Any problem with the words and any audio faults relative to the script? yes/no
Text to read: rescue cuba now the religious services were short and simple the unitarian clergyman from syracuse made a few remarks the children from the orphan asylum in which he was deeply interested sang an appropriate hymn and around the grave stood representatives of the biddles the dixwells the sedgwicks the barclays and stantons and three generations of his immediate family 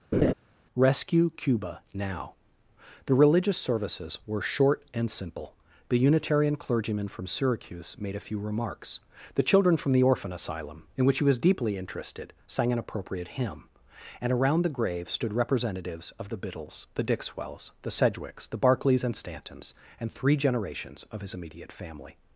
yes